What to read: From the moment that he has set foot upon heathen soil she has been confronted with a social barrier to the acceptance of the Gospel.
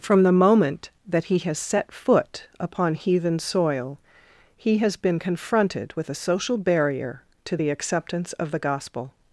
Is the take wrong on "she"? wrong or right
wrong